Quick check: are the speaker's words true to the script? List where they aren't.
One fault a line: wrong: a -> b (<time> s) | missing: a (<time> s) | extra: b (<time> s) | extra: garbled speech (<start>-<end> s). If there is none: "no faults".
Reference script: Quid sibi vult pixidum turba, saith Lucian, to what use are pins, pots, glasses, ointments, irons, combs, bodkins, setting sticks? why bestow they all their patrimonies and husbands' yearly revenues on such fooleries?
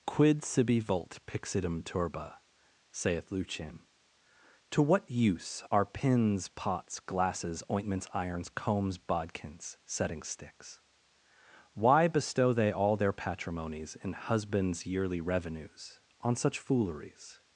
wrong: and -> in (13.9 s)